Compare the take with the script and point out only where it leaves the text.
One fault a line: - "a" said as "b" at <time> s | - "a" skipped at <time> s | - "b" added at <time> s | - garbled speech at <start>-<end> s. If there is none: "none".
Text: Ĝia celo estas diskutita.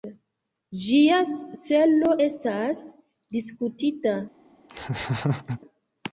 none